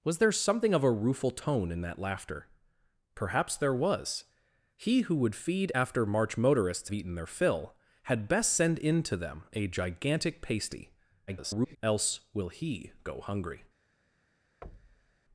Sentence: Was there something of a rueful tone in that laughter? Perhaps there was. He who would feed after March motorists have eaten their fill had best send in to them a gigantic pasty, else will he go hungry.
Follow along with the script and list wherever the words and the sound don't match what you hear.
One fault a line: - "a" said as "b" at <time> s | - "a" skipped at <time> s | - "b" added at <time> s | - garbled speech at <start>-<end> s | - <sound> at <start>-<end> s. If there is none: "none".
- "have" skipped at 6.9 s
- garbled speech at 11.3-11.8 s
- thud at 14.6-15.2 s